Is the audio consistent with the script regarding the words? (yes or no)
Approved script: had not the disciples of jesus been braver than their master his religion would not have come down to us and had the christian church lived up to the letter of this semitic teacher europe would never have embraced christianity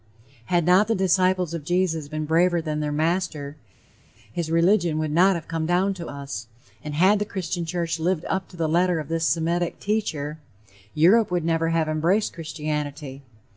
yes